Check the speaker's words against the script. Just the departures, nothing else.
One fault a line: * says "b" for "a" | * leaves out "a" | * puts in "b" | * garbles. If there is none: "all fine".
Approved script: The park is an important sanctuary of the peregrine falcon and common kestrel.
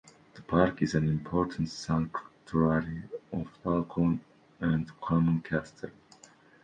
* leaves out "the peregrine"